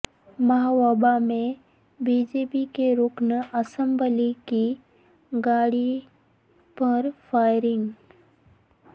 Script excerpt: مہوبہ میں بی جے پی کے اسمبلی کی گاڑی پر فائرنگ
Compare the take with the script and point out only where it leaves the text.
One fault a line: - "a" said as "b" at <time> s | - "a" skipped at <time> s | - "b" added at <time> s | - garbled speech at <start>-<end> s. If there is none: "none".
- "رکن" added at 3.0 s